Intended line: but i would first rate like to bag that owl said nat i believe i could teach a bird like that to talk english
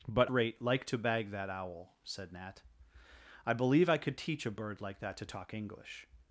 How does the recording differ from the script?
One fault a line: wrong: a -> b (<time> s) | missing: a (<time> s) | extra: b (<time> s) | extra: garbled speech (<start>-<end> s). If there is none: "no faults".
missing: i would first (0.3 s)